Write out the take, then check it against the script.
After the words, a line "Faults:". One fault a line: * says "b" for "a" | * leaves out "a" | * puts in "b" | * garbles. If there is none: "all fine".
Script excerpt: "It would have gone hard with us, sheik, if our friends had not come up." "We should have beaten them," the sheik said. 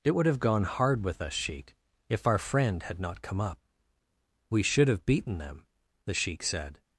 "It would have gone hard with us, sheik, if our friend had not come up." "We should have beaten them," the sheik said.
Faults:
* says "friend" for "friends"